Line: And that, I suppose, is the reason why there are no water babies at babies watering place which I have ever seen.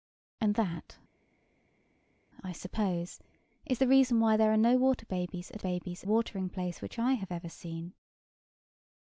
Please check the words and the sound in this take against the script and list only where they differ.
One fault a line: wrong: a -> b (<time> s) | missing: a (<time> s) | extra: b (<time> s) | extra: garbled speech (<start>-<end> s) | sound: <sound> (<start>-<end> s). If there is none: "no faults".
no faults